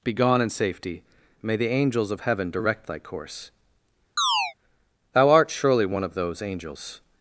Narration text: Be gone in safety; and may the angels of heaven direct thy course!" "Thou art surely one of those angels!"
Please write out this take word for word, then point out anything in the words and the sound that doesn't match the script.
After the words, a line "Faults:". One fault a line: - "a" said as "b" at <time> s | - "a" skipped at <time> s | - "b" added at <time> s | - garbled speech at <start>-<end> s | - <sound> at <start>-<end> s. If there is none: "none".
Be gone in safety; may the angels of heaven direct thy course!" "Thou art surely one of those angels!"
Faults:
- "and" skipped at 1.0 s
- chirp at 4.2-4.5 s